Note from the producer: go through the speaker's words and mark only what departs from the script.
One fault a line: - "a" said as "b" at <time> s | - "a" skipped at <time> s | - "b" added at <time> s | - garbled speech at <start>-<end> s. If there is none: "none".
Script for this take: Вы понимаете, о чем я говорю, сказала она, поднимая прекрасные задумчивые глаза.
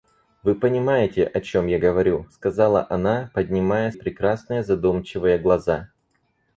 none